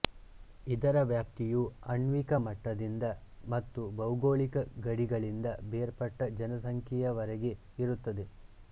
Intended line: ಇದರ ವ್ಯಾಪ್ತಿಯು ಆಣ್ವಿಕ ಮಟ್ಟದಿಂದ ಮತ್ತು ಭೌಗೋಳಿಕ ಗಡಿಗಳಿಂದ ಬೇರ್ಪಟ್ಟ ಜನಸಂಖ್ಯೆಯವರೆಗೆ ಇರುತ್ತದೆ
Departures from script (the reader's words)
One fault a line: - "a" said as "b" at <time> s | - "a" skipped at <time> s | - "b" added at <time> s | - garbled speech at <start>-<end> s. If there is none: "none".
none